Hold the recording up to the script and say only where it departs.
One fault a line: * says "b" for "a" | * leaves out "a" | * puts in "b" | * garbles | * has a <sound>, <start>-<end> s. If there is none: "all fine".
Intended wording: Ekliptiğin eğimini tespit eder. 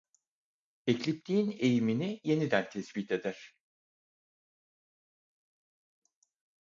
* puts in "yeniden"